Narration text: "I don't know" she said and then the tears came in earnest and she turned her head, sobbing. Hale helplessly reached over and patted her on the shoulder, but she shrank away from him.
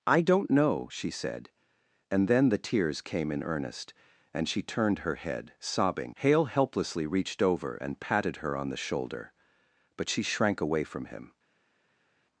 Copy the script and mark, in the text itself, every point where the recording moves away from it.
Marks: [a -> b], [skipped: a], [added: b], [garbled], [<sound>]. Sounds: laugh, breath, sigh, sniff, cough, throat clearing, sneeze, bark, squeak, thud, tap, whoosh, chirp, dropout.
"I don't know" she said and then the tears came in earnest and she turned her head, sobbing. Hale helplessly reached over and patted her on the shoulder, but she shrank away from him.